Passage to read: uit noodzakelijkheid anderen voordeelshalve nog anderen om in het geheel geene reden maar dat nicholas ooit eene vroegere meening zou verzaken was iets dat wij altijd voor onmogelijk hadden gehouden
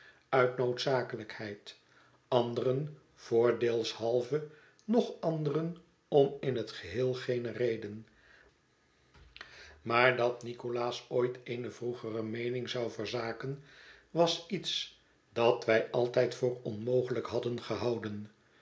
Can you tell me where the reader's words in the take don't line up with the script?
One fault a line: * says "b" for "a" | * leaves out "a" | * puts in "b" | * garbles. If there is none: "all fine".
all fine